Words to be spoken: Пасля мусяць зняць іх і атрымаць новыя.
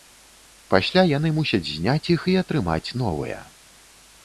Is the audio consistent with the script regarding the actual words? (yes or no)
no